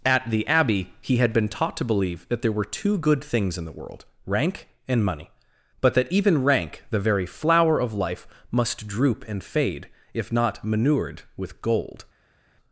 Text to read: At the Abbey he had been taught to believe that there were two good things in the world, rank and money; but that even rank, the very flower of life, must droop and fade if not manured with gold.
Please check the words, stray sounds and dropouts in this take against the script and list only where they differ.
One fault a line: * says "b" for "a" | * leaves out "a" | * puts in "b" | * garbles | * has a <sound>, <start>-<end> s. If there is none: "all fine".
all fine